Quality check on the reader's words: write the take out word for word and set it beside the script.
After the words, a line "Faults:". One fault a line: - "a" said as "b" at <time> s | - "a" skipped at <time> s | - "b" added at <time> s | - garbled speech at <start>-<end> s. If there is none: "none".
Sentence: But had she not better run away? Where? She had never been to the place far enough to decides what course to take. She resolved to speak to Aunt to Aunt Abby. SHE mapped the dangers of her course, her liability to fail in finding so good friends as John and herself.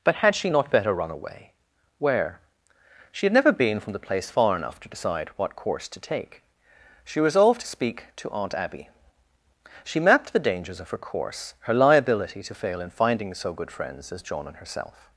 But had she not better run away? Where? She had never been from the place far enough to decide what course to take. She resolved to speak to Aunt Abby. SHE mapped the dangers of her course, her liability to fail in finding so good friends as John and herself.
Faults:
- "to" said as "from" at 3.8 s
- "decides" said as "decide" at 4.9 s
- "to Aunt" skipped at 8.6 s